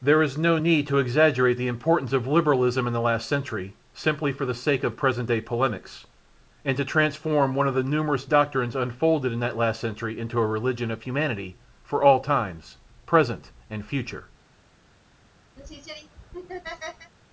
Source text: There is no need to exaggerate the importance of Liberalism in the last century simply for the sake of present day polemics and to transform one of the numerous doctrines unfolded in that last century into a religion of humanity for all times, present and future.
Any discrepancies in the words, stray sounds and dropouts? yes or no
yes